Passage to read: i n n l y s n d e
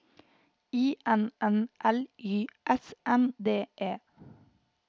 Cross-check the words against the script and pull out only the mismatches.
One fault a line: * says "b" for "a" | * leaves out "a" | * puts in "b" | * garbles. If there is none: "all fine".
all fine